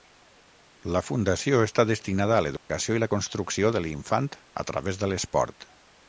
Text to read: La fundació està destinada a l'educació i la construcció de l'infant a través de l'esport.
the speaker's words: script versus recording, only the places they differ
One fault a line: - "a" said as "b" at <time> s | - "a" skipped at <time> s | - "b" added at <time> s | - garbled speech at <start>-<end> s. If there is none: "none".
none